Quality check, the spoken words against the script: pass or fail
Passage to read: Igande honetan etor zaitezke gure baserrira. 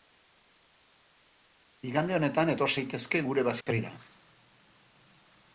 pass